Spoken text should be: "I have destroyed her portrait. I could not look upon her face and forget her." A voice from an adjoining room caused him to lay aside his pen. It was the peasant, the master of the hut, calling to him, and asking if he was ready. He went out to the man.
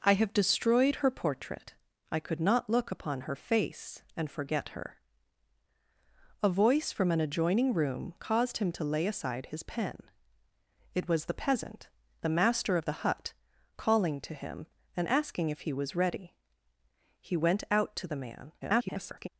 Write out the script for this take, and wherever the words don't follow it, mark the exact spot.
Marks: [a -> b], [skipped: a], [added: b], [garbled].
"I have destroyed her portrait. I could not look upon her face and forget her." A voice from an adjoining room caused him to lay aside his pen. It was the peasant, the master of the hut, calling to him, and asking if he was ready. He went out to the man. [garbled]